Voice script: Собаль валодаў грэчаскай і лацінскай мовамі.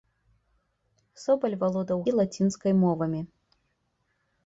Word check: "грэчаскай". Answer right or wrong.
wrong